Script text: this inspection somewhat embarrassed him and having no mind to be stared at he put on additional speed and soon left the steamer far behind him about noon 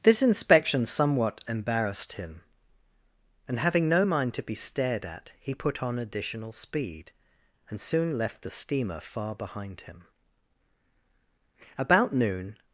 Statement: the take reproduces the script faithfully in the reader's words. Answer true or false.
true